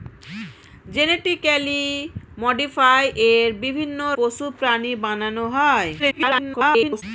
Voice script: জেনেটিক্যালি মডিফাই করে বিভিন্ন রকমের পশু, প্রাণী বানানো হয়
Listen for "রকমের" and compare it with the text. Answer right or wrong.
wrong